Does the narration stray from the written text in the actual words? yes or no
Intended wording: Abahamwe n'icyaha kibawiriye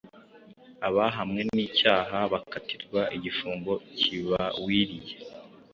yes